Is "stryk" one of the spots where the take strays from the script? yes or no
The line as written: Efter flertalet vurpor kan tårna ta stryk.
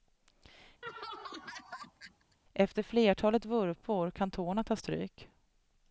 no